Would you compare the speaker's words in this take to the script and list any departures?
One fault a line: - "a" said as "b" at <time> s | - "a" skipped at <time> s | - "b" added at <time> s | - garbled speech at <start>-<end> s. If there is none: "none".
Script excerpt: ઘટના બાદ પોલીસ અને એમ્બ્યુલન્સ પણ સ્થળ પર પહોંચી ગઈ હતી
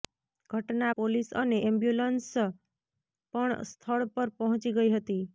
- "બાદ" skipped at 0.9 s